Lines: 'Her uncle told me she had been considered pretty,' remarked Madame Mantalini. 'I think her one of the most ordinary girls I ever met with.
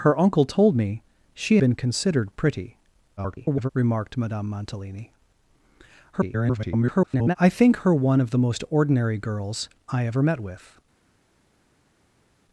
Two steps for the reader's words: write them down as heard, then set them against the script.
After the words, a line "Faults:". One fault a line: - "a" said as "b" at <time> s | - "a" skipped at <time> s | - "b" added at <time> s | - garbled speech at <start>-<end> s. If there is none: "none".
'Her uncle told me she been considered pretty,' [garbled] remarked Madame Mantalini. [garbled] 'I think her one of the most ordinary girls I ever met with.
Faults:
- "had" skipped at 1.6 s
- garbled speech at 3.2-3.7 s
- garbled speech at 6.1-7.4 s